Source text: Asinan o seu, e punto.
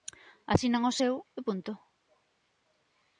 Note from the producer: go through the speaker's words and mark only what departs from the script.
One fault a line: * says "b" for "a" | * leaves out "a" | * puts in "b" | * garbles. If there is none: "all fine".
all fine